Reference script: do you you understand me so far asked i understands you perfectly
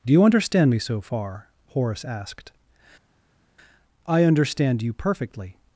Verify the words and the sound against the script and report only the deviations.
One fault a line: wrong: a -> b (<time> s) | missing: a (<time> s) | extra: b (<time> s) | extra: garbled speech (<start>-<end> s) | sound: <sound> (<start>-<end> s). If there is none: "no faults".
missing: you (0.2 s)
extra: horace (1.7 s)
wrong: understands -> understand (4.3 s)